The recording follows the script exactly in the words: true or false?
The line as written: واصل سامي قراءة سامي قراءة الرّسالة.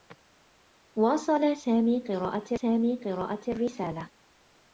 true